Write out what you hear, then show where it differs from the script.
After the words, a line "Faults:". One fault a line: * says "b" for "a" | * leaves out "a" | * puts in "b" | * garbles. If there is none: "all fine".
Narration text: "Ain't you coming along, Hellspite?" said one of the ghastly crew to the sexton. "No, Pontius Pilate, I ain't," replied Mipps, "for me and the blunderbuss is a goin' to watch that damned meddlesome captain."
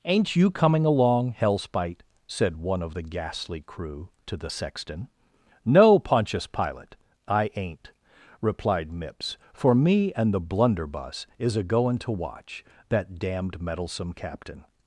"Ain't you coming along, Hellspite?" said one of the ghastly crew to the sexton. "No, Pontius Pilate, I ain't," replied Mipps, "for me and the blunderbuss is a goin' to watch that damned meddlesome captain."
Faults:
all fine